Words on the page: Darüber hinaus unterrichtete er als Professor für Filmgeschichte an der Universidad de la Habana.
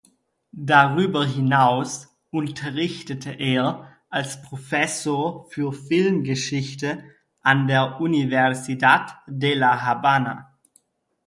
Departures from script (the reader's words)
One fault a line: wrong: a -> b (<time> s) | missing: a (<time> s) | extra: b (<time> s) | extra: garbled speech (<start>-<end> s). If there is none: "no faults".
no faults